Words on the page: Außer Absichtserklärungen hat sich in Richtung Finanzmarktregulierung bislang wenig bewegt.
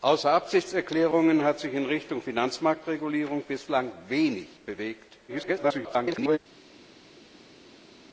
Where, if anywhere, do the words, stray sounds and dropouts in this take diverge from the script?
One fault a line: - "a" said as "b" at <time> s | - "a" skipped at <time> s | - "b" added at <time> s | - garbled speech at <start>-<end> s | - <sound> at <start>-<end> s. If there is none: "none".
- garbled speech at 5.3-6.4 s